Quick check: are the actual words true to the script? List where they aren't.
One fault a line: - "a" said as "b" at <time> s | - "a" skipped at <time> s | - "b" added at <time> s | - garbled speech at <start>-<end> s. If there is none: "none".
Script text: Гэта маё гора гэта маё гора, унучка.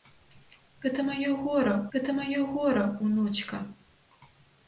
none